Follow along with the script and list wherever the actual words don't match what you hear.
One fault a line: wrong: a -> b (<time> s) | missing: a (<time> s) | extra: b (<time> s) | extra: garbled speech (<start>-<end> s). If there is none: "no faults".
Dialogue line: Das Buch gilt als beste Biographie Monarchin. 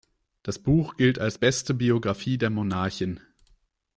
extra: der (2.4 s)